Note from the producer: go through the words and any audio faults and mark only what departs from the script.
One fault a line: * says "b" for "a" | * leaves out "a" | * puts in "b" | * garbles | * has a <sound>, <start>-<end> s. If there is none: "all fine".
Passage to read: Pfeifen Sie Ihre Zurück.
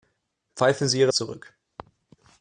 all fine